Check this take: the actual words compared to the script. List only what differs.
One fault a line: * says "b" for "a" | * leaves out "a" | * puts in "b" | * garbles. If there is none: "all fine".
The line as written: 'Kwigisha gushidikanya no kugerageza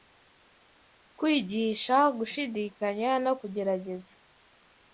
all fine